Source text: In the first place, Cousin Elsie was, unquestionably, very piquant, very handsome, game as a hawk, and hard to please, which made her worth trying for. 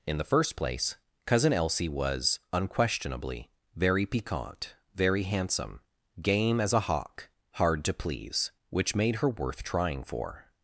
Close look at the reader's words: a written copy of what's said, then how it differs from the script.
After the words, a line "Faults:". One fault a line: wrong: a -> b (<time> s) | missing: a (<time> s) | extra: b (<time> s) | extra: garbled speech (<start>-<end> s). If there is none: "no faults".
In the first place, Cousin Elsie was, unquestionably, very piquant, very handsome, game as a hawk, hard to please, which made her worth trying for.
Faults:
missing: and (7.3 s)